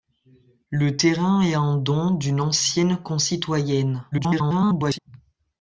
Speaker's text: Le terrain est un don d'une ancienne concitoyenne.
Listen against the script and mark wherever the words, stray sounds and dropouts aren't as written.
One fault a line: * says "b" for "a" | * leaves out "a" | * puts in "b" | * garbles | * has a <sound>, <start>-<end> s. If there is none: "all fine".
* garbles